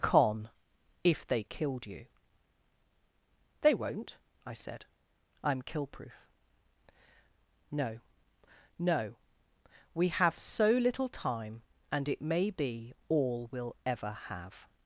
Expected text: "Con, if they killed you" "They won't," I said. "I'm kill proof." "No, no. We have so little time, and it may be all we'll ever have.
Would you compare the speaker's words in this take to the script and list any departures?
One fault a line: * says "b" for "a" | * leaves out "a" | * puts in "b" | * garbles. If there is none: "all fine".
all fine